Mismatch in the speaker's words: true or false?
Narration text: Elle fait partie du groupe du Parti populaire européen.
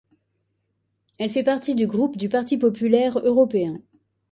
false